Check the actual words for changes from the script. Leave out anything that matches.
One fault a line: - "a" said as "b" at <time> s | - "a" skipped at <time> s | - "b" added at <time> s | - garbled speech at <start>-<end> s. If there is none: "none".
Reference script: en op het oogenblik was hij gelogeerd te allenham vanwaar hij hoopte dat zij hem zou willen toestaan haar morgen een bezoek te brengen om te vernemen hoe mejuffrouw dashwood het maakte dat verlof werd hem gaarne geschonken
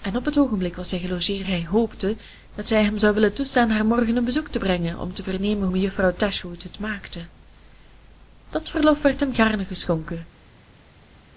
- "te allenham vanwaar" skipped at 1.5 s
- "hoe" skipped at 5.7 s